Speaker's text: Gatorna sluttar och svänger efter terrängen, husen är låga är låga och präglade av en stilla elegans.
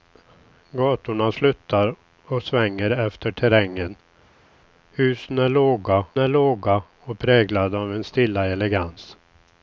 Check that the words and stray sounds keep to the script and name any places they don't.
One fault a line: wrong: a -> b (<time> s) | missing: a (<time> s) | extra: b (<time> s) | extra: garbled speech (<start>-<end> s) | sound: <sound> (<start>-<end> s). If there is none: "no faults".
no faults